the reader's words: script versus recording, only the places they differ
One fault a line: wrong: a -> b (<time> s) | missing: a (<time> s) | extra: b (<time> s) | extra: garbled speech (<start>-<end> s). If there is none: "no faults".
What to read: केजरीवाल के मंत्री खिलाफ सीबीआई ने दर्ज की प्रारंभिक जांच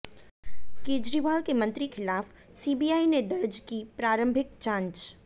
no faults